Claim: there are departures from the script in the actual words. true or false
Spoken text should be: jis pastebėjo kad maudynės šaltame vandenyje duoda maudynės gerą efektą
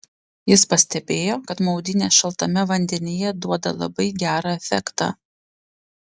true